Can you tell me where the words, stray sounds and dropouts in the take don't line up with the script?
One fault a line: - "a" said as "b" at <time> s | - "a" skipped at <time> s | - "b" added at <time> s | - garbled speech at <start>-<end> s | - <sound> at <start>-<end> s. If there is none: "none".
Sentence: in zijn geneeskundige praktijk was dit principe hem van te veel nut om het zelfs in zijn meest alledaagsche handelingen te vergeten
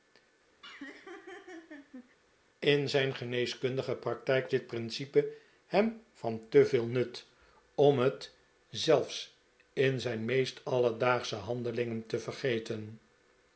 - laugh at 0.6-2.2 s
- "was" skipped at 4.5 s